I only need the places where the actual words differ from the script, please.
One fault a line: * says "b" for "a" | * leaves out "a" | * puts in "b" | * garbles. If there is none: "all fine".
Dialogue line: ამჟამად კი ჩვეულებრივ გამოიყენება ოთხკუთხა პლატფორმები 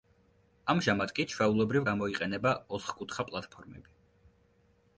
all fine